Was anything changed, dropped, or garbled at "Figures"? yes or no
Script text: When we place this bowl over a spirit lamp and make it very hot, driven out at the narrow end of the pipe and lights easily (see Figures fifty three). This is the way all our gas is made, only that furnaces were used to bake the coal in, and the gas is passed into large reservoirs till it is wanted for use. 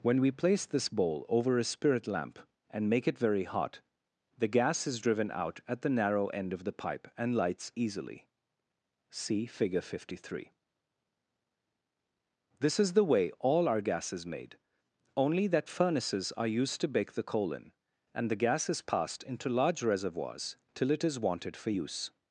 yes